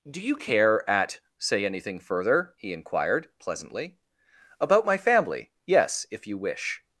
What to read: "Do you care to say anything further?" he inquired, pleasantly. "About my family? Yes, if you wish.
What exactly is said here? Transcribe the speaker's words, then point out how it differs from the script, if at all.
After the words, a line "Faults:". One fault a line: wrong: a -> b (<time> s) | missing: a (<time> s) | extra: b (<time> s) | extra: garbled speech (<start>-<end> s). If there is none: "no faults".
"Do you care at say anything further?" he inquired, pleasantly. "About my family? Yes, if you wish.
Faults:
wrong: to -> at (0.9 s)